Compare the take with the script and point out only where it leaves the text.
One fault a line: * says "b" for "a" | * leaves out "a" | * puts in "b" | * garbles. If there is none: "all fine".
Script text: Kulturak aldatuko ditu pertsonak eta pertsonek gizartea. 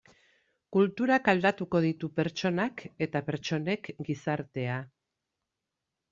all fine